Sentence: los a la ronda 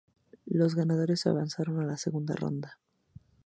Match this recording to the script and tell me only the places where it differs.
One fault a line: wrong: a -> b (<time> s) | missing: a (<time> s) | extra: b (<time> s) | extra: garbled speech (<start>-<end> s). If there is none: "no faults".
extra: ganadores avanzaron (0.7 s)
extra: segunda (1.9 s)